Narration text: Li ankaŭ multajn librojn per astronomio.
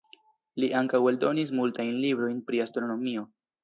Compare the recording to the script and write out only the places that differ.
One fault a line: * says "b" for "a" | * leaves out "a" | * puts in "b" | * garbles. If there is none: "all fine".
* puts in "eldonis"
* says "pri" for "per"